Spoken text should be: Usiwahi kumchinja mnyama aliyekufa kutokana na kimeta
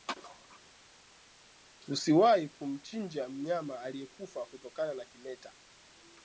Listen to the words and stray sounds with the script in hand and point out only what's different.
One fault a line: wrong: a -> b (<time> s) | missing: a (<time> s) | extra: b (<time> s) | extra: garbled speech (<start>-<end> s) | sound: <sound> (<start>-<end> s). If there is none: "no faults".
no faults